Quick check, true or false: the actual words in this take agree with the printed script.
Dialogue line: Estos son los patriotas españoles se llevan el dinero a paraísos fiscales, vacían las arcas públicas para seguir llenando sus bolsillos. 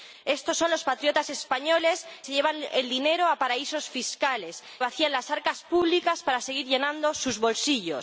true